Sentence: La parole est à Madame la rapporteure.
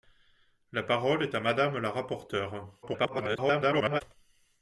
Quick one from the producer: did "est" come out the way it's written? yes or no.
yes